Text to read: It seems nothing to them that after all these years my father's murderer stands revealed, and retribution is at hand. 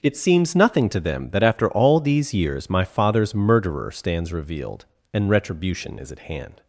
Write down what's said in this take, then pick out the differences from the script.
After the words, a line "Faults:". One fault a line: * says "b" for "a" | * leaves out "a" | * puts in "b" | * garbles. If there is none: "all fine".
It seems nothing to them that after all these years my father's murderer stands revealed, and retribution is at hand.
Faults:
all fine